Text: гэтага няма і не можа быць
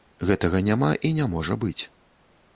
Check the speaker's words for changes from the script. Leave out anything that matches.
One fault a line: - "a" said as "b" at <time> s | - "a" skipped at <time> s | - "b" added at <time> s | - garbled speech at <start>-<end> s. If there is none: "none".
none